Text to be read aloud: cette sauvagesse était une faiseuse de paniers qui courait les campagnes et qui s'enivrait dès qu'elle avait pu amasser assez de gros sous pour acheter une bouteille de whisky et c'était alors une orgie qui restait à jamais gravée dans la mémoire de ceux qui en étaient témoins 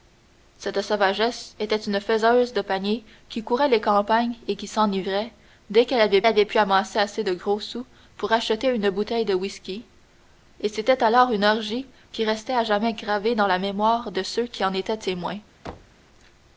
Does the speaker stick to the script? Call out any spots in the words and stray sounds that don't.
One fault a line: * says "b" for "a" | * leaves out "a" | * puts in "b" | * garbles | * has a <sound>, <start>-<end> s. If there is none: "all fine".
* puts in "avait"
* has a thud, 15.7-16.0 s